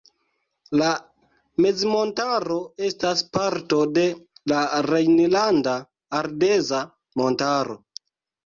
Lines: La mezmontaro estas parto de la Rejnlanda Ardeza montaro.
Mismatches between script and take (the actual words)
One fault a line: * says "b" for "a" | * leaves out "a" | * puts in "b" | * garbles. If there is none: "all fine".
all fine